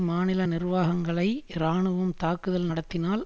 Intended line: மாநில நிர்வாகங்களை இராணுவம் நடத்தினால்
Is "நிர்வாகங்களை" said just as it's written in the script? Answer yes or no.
yes